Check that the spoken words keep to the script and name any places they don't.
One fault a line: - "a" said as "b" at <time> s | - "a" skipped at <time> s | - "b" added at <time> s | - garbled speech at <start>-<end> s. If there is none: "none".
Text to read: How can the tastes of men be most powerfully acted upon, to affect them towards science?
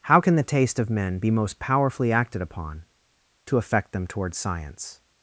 - "tastes" said as "taste" at 0.4 s